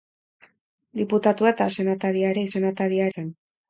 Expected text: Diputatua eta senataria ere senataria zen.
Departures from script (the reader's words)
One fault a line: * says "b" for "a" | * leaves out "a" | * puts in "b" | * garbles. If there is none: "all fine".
all fine